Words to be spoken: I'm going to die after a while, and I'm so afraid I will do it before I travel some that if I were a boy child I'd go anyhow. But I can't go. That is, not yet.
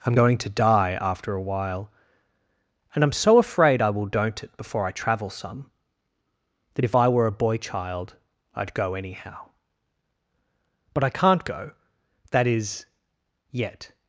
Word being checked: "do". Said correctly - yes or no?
no